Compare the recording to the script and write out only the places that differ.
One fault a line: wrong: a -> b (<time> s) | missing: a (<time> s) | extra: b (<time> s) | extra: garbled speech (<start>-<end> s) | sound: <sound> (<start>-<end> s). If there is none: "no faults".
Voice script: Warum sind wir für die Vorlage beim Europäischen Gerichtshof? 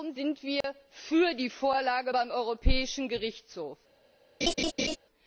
sound: dropout (0.6-0.6 s)
sound: laugh (4.4-5.0 s)